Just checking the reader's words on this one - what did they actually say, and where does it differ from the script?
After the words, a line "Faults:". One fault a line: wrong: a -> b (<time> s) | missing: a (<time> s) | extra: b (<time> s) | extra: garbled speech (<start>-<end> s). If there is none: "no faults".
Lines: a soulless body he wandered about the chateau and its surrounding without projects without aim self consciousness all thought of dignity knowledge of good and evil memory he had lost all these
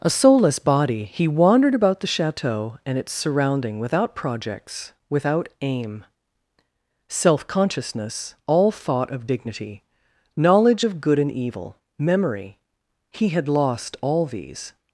a soulless body he wandered about the chateau and its surrounding without projects without aim self consciousness all thought of dignity knowledge of good and evil memory he had lost all these
Faults:
no faults